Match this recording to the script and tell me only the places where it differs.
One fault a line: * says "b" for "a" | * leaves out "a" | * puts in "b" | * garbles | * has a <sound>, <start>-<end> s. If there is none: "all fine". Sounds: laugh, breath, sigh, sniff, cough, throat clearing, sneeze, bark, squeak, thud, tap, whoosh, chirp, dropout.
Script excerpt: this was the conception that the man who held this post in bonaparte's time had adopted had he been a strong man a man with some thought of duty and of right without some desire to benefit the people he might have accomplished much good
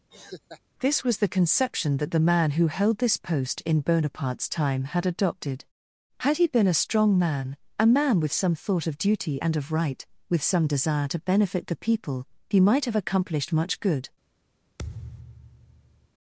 * has a laugh, 0.1-0.6 s
* says "with" for "without"
* has a thud, 14.8-16.1 s